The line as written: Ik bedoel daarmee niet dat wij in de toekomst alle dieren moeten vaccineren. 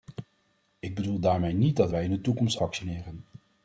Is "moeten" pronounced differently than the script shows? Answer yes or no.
yes